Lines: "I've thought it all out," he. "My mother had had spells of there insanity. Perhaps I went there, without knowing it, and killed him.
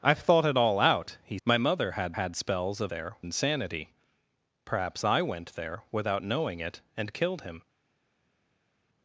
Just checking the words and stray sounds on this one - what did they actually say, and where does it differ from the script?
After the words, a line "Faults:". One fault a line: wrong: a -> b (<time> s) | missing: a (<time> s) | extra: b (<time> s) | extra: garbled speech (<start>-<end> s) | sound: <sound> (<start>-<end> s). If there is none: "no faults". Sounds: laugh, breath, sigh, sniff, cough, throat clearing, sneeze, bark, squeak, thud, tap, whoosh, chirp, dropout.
"I've thought it all out," he. "My mother had had spells of there insanity. Perhaps I went there, without knowing it, and killed him.
Faults:
no faults